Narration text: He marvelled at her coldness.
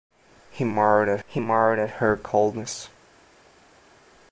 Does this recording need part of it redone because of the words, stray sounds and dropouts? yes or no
yes